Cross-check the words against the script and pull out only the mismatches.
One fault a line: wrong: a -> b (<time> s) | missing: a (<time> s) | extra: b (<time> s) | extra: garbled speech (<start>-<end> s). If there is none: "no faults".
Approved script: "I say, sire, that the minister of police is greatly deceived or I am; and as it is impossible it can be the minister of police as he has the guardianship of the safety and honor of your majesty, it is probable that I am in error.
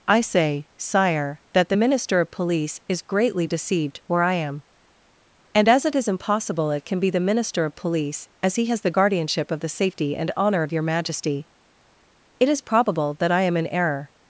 wrong: or -> where (4.1 s)